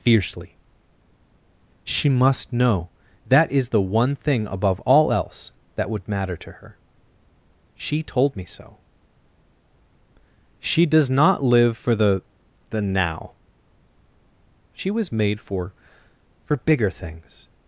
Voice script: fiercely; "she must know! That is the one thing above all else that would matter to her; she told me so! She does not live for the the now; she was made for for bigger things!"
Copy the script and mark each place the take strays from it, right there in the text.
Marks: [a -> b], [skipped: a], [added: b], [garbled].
fiercely; "she must know! That is the one thing above all else that would matter to her; she told me so! She does not live for the the now; she was made for for bigger things!"